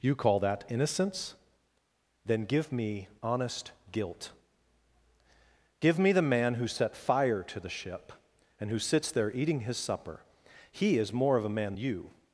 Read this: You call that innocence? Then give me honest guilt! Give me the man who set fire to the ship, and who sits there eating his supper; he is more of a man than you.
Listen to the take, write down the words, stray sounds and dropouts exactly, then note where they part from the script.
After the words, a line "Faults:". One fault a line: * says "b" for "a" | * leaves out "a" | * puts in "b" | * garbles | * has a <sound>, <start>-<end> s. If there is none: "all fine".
You call that innocence? Then give me honest guilt! Give me the man who set fire to the ship, and who sits there eating his supper; he is more of a man you.
Faults:
* leaves out "than"